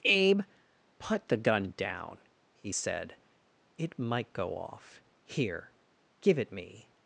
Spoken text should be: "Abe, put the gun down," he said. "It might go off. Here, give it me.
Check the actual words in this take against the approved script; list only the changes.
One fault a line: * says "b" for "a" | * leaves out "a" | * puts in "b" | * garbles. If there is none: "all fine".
all fine